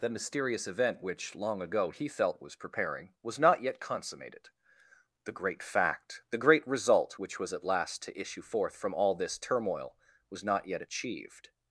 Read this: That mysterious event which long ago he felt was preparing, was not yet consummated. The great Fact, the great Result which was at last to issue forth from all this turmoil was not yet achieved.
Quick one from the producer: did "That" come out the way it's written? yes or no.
no